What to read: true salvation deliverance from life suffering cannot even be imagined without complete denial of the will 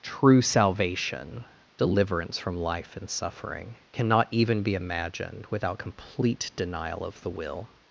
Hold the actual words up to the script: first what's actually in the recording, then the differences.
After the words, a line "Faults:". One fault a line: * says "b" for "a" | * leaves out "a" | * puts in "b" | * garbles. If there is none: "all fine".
true salvation deliverance from life and suffering cannot even be imagined without complete denial of the will
Faults:
* puts in "and"